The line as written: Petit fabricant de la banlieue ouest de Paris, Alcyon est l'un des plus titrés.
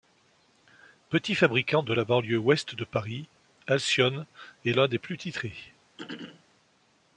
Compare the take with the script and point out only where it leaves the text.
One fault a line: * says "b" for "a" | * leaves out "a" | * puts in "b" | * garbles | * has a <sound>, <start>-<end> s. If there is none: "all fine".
* has a throat clearing, 6.0-6.4 s